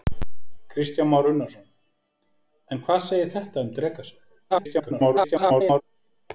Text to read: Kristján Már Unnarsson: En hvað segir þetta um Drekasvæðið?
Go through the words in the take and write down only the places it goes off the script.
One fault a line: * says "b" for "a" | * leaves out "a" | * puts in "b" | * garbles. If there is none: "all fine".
* garbles